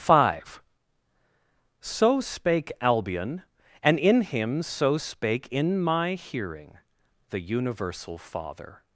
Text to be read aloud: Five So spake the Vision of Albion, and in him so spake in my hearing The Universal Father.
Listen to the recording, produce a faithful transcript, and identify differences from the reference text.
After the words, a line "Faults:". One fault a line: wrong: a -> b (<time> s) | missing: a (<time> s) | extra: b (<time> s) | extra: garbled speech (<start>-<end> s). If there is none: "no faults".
Five So spake Albion, and in him so spake in my hearing The Universal Father.
Faults:
missing: the Vision of (2.7 s)